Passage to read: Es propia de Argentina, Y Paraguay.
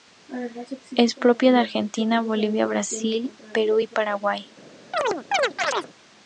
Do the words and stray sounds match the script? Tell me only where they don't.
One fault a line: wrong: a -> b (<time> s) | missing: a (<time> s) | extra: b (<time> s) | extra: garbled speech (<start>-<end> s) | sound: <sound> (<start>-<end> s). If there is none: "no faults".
extra: Bolivia Brasil Perú (2.2 s)
sound: chirp (4.9-5.9 s)